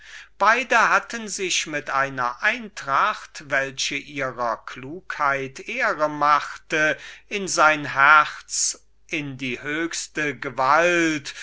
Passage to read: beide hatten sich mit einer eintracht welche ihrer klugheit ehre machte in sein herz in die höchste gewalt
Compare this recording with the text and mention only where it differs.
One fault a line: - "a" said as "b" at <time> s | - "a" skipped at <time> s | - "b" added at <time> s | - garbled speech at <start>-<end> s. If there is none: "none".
none